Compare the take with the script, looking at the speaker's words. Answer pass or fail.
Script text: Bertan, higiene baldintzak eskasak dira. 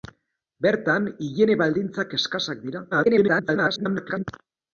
fail